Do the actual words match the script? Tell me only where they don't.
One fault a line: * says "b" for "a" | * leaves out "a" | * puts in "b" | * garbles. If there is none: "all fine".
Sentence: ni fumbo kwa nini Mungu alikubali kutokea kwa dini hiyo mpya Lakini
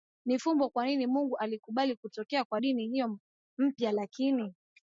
all fine